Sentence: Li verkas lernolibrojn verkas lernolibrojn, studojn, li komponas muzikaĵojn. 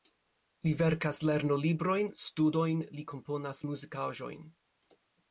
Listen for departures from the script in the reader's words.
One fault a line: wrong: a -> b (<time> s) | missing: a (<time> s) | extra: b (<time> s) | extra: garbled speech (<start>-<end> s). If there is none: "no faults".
missing: verkas lernolibrojn (2.1 s)